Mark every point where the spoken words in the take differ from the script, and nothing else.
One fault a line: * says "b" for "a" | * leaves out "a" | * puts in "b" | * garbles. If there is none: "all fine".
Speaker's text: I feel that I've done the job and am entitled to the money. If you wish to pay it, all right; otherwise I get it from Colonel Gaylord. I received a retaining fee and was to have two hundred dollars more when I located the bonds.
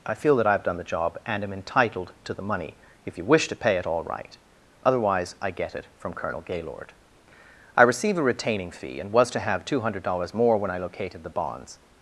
* says "receive" for "received"